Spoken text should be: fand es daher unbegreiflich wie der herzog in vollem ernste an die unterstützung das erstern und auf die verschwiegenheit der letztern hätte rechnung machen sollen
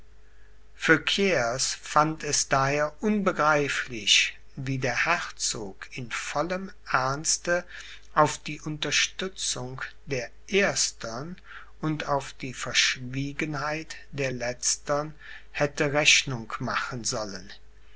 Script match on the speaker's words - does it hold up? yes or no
no